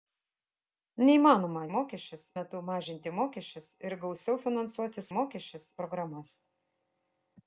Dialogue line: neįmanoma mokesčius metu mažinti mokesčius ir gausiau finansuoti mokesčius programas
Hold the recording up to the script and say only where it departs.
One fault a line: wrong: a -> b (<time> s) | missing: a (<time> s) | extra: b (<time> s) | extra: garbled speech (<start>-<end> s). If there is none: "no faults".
no faults